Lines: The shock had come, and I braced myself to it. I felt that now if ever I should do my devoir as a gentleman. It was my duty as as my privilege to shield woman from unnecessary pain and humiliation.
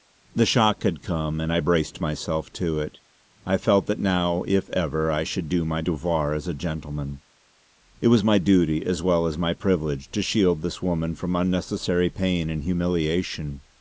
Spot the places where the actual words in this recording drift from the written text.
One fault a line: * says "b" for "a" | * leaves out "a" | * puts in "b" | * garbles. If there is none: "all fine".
* puts in "well"
* puts in "this"